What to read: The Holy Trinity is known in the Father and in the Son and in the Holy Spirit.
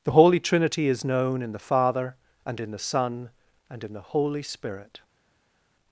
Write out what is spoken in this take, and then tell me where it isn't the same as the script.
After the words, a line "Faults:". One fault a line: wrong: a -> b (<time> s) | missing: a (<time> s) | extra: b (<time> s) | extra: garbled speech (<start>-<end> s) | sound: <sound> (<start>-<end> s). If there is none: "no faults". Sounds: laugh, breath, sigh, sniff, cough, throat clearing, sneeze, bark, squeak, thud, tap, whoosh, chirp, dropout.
The Holy Trinity is known in the Father and in the Son and in the Holy Spirit.
Faults:
no faults